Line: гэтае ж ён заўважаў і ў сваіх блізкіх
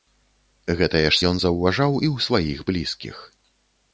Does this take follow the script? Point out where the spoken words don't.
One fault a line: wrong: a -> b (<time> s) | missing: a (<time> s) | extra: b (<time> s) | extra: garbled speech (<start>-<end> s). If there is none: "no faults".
no faults